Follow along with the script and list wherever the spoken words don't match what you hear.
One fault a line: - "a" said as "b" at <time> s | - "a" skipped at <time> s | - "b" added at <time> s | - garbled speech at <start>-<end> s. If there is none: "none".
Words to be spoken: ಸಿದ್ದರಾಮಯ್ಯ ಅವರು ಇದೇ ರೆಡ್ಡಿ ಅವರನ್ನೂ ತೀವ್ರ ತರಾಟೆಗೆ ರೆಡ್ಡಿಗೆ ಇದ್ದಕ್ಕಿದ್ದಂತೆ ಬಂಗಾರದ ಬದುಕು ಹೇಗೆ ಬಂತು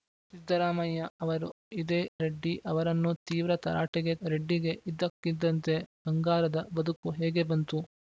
none